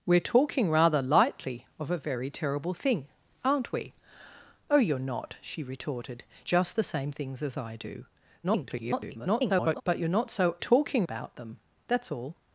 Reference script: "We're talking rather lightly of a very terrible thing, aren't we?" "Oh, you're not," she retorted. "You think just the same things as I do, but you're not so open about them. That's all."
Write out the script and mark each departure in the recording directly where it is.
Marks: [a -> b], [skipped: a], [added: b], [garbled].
"We're talking rather lightly of a very terrible thing, aren't we?" "Oh, you're not," she retorted. [skipped: "You think] just the same things as I do, [garbled] but you're not so [open -> talking] about them. That's all."